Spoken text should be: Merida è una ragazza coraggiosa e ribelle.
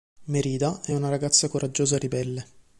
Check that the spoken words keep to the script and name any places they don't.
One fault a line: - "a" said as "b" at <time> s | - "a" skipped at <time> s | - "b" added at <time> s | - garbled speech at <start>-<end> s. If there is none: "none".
none